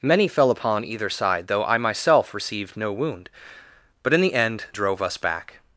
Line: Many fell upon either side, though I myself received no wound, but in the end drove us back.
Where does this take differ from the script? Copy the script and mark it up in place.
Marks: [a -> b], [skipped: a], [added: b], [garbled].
Many fell upon either side, though I myself received no wound, but in the end drove us back.